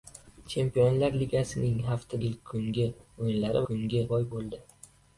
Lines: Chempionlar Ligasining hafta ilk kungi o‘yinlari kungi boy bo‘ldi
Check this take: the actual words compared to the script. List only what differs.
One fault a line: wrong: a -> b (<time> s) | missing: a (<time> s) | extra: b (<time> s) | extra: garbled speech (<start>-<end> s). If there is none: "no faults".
no faults